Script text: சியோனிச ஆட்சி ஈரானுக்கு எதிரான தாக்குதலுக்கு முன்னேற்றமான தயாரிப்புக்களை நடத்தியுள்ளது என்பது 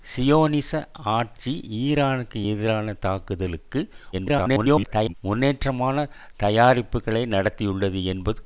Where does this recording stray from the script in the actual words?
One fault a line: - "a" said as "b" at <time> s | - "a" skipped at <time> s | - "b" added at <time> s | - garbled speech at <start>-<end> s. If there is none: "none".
- garbled speech at 4.1-5.1 s